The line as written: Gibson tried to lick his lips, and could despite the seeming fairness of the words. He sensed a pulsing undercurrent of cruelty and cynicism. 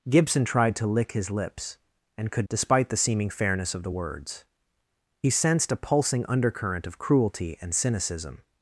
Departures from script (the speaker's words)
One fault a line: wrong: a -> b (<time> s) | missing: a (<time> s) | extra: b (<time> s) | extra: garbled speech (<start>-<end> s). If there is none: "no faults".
no faults